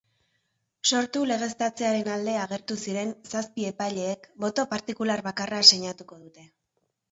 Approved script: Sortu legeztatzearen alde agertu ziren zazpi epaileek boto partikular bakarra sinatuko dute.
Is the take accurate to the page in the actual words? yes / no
yes